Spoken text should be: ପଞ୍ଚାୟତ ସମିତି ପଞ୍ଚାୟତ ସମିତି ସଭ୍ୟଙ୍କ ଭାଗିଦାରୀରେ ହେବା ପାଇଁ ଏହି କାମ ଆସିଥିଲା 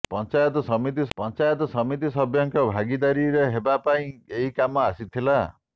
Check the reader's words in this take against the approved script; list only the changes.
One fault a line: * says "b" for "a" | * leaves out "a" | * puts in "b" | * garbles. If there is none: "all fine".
all fine